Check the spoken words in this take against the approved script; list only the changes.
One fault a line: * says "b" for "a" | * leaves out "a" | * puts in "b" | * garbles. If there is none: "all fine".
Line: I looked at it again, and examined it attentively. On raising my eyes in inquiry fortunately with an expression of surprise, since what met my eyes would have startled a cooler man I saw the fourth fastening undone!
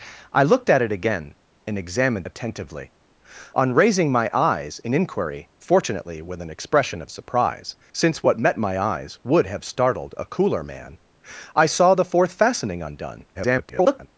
* leaves out "it"
* garbles